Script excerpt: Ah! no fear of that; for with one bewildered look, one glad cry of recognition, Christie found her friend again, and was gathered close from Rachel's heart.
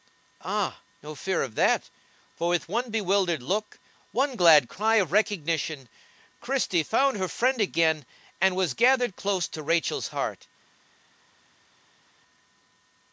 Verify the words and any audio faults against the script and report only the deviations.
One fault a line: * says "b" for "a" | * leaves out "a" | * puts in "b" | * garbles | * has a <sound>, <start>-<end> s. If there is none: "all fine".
* says "to" for "from"